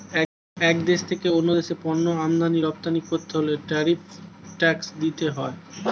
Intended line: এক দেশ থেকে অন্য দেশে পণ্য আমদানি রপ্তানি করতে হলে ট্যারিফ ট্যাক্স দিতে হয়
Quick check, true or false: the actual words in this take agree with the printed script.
true